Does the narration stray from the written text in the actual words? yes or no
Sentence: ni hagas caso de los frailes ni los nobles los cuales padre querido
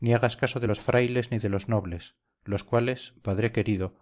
yes